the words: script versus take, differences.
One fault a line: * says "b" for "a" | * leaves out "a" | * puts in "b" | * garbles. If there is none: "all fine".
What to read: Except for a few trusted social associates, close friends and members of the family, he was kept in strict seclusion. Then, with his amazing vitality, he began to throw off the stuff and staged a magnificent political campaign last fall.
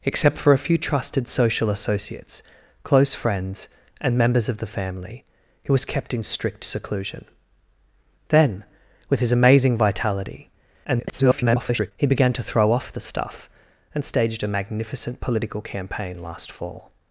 * garbles